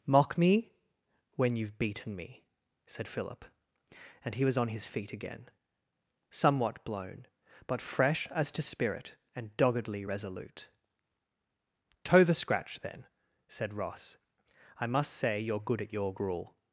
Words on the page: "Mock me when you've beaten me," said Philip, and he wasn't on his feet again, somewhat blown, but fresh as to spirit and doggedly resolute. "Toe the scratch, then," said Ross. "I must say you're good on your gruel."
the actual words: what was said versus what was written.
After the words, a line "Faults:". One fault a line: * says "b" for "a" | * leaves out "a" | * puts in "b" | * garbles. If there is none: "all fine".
"Mock me when you've beaten me," said Philip, and he was on his feet again, somewhat blown, but fresh as to spirit and doggedly resolute. "Toe the scratch, then," said Ross. "I must say you're good at your gruel."
Faults:
* says "was" for "wasn't"
* says "at" for "on"